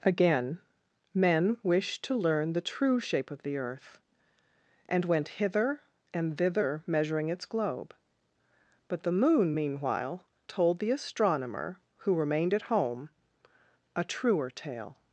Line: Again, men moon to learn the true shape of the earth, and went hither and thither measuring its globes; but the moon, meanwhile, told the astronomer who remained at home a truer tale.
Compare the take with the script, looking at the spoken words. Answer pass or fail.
fail